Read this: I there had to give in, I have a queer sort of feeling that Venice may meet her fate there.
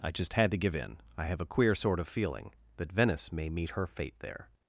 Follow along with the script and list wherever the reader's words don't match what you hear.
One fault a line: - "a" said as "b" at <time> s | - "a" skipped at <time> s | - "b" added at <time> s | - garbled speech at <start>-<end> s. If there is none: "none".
- "there" said as "just" at 0.1 s